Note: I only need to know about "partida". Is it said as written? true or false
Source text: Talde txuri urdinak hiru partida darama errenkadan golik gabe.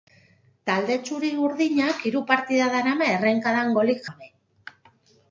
true